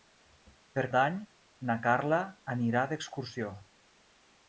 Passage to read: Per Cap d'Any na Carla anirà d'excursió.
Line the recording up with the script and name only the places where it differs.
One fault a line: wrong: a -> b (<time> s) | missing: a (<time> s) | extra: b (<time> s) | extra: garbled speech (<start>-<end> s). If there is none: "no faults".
missing: Cap (0.8 s)